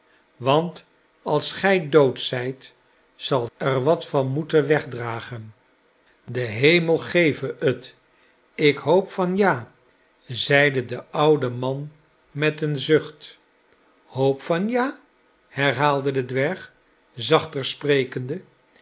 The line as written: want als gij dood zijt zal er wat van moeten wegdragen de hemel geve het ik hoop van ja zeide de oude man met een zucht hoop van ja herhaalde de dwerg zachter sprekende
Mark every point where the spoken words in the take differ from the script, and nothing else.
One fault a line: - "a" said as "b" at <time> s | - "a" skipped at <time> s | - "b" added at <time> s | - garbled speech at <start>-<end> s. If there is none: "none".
none